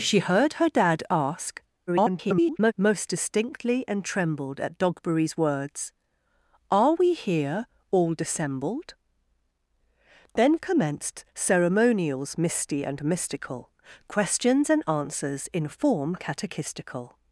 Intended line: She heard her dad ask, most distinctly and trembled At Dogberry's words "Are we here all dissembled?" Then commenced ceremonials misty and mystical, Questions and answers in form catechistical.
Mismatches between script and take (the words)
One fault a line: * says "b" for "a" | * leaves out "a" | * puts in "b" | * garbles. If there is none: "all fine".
* garbles